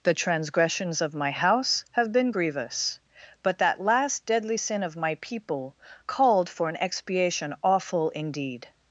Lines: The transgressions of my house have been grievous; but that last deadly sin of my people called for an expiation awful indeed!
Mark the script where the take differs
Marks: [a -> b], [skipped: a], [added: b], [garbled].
The transgressions of my house have been grievous; but that last deadly sin of my people called for an expiation awful indeed!